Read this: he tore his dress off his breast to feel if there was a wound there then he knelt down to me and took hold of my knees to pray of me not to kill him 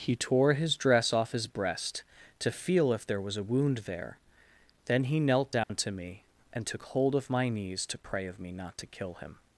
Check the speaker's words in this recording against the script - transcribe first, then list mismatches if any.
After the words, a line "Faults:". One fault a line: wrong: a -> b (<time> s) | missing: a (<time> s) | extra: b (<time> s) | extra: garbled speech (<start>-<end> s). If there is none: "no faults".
he tore his dress off his breast to feel if there was a wound there then he knelt down to me and took hold of my knees to pray of me not to kill him
Faults:
no faults